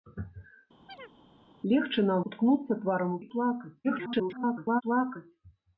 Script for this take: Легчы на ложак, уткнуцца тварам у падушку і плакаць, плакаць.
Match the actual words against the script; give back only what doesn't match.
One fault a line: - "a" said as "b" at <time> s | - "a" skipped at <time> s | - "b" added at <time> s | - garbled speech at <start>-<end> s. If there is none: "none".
- "ложак" skipped at 2.2 s
- "падушку" skipped at 3.2 s
- garbled speech at 3.8-4.8 s